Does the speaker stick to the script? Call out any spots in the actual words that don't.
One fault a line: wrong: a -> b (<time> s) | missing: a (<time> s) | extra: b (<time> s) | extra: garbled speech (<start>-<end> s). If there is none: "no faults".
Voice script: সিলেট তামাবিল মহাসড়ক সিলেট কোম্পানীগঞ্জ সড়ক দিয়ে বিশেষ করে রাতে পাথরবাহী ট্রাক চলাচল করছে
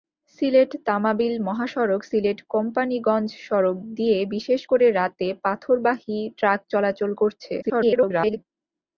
extra: garbled speech (7.6-8.4 s)